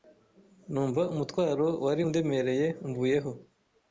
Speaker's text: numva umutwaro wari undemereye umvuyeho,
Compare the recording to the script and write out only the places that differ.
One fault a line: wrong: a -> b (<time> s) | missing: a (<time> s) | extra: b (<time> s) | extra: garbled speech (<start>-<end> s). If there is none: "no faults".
no faults